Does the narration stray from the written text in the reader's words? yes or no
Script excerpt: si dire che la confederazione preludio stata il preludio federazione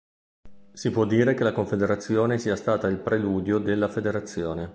yes